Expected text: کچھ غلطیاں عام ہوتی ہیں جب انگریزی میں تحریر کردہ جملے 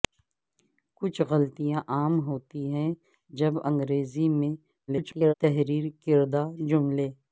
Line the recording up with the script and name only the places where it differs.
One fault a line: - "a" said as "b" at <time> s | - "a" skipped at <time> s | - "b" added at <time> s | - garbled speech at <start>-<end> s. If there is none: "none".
- garbled speech at 4.9-5.3 s